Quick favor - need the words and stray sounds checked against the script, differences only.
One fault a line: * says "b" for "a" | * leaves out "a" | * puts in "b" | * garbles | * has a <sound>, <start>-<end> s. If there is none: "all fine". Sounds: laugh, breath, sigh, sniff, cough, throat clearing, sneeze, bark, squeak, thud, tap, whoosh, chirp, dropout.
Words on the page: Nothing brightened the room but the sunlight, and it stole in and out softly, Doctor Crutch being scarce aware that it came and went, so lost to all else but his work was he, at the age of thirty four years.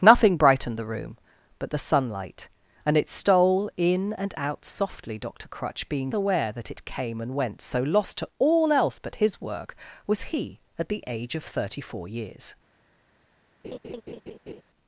* leaves out "scarce"
* has a laugh, 13.6-14.6 s